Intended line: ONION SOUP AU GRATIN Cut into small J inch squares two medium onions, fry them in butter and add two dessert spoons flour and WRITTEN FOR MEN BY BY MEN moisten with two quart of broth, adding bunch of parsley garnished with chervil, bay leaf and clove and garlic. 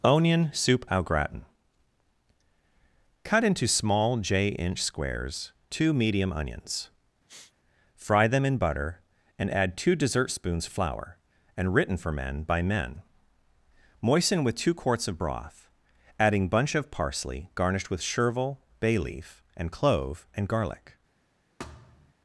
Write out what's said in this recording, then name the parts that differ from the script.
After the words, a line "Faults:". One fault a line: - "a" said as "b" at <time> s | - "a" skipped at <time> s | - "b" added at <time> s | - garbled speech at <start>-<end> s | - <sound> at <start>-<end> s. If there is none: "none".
ONION SOUP AU GRATIN Cut into small J inch squares two medium onions, fry them in butter and add two dessert spoons flour and WRITTEN FOR MEN BY MEN moisten with two quarts of broth, adding bunch of parsley garnished with chervil, bay leaf and clove and garlic.
Faults:
- sniff at 7.3-7.5 s
- "BY" skipped at 12.6 s
- "quart" said as "quarts" at 14.8 s
- thud at 21.6-22.1 s